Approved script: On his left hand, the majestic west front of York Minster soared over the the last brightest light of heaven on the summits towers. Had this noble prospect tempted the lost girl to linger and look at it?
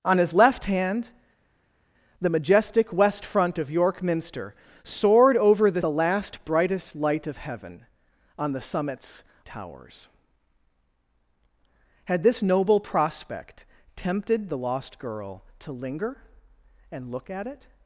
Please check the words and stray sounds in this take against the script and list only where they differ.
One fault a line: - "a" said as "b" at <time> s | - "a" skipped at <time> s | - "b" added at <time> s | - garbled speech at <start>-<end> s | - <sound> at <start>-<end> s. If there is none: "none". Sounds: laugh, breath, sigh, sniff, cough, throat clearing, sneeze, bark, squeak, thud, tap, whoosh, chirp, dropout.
none